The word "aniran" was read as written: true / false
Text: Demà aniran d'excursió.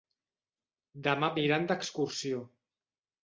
true